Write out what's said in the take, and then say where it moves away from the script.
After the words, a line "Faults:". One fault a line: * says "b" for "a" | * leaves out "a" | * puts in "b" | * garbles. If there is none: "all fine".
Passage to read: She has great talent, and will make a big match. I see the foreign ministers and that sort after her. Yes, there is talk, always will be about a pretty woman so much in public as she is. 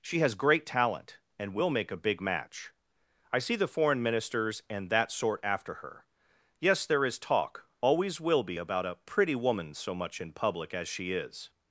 She has great talent, and will make a big match. I see the foreign ministers and that sort after her. Yes, there is talk, always will be about a pretty woman so much in public as she is.
Faults:
all fine